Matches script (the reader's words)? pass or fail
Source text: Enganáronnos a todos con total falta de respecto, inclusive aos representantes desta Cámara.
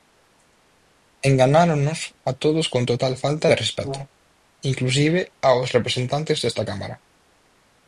pass